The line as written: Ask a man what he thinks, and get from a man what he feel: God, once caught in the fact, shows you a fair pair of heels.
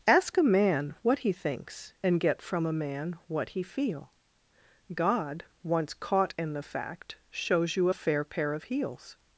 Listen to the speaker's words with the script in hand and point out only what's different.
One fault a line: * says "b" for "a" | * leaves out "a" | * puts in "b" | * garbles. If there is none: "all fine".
all fine